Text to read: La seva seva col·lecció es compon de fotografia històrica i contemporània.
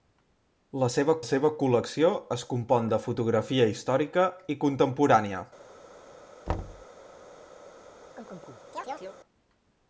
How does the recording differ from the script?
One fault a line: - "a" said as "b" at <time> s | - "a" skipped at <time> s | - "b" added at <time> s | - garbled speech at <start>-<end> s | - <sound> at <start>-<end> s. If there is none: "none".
- thud at 6.5-6.9 s
- chirp at 8.2-9.2 s